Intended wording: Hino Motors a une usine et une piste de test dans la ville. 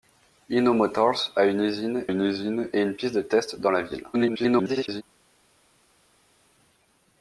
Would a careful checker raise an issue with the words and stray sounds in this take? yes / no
yes